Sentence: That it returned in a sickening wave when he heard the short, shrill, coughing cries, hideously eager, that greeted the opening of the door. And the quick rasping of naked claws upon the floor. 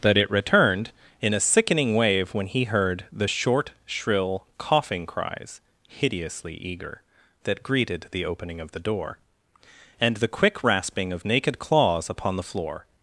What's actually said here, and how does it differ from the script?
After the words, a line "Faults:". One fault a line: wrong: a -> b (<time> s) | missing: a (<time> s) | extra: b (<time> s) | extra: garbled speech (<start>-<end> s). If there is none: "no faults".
That it returned in a sickening wave when he heard the short, shrill, coughing cries, hideously eager, that greeted the opening of the door. And the quick rasping of naked claws upon the floor.
Faults:
no faults